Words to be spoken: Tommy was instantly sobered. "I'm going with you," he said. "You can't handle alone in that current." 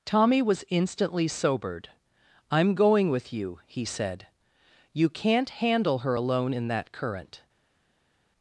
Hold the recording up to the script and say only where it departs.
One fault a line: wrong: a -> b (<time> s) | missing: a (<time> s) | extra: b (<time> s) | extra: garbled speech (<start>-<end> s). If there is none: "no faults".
extra: her (6.0 s)